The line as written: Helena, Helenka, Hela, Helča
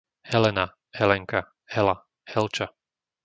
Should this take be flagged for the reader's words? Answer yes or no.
no